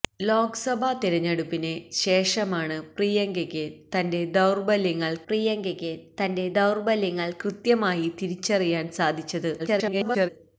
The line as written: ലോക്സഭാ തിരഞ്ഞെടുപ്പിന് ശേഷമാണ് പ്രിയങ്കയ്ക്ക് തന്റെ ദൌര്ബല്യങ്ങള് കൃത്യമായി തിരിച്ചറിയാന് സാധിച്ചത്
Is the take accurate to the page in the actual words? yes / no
no